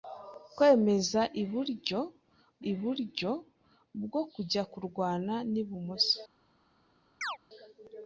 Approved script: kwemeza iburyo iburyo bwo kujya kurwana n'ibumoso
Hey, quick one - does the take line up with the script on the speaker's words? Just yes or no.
yes